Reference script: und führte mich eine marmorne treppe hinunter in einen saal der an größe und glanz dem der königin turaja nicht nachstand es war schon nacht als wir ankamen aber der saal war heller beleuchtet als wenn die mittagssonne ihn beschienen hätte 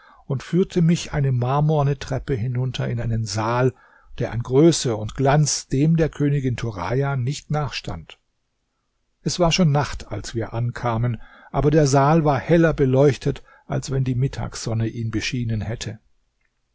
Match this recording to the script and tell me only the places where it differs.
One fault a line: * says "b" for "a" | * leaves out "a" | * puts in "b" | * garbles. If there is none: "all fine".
all fine